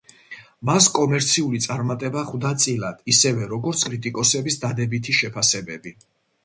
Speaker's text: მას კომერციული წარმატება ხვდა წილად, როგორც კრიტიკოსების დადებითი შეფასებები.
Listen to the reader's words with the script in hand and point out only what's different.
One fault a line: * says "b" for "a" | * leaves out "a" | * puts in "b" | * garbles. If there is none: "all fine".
* puts in "ისევე"